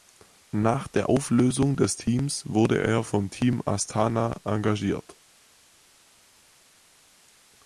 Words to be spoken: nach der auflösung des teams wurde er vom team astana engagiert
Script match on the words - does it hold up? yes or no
yes